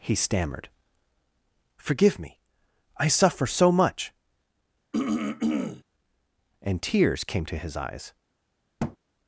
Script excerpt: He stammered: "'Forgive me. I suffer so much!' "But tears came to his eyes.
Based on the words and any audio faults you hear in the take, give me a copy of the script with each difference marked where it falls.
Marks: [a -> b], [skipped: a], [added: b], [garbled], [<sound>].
He stammered: "'Forgive me. I suffer so much!' [throat clearing] ["But -> And] tears came to his eyes. [thud]